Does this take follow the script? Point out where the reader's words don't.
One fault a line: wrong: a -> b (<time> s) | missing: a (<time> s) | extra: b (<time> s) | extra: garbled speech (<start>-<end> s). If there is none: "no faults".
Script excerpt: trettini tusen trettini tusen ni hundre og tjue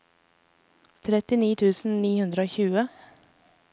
missing: trettini tusen (2.0 s)